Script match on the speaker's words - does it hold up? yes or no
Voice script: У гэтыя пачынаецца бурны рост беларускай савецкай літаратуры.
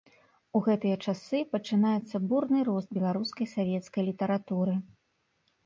no